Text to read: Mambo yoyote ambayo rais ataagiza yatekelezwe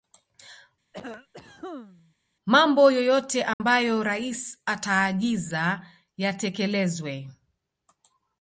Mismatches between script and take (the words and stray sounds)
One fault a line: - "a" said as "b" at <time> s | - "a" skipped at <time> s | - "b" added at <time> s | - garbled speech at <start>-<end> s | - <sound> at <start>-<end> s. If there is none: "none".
- cough at 0.9-2.1 s
- dropout at 3.5-3.6 s